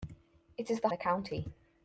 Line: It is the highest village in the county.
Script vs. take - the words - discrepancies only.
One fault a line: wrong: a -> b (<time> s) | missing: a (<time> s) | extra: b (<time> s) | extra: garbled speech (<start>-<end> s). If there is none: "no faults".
missing: highest village in (0.9 s)